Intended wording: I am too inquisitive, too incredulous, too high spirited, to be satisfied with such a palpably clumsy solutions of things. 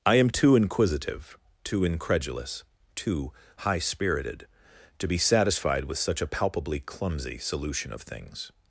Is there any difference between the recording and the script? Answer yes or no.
yes